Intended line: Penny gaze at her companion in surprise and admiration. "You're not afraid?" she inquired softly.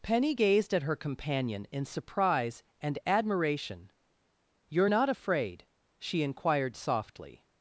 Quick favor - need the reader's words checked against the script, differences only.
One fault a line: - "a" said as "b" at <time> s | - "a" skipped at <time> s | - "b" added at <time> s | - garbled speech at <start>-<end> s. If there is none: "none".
- "gaze" said as "gazed" at 0.3 s